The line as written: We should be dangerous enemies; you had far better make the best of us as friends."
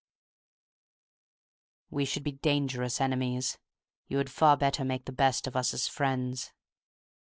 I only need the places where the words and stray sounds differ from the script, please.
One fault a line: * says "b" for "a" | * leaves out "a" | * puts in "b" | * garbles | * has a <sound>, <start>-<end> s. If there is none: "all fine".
all fine